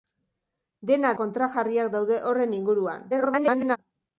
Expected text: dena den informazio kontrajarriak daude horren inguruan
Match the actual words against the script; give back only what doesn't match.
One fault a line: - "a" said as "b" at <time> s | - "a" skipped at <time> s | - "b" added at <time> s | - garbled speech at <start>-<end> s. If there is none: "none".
- "den informazio" skipped at 1.1 s
- garbled speech at 3.1-3.8 s